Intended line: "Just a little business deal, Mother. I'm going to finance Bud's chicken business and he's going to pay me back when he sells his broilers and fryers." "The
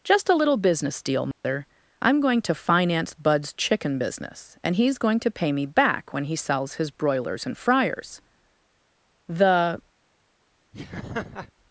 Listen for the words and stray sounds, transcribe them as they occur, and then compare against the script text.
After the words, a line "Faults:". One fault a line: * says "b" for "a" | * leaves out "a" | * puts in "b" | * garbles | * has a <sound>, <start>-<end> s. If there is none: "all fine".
"Just a little business deal, Mother. I'm going to finance Bud's chicken business and he's going to pay me back when he sells his broilers and fryers." "The
Faults:
* has a dropout, 1.3-1.4 s
* has a laugh, 10.7-11.5 s